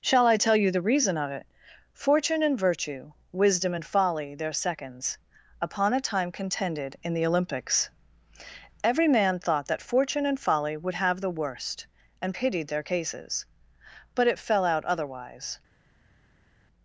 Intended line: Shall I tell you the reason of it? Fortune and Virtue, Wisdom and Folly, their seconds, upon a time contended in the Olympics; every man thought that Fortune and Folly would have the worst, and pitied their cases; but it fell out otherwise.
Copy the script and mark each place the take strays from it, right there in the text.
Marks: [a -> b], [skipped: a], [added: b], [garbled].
Shall I tell you the reason of it? Fortune and Virtue, Wisdom and Folly, their seconds, upon a time contended in the Olympics; every man thought that Fortune and Folly would have the worst, and pitied their cases; but it fell out otherwise.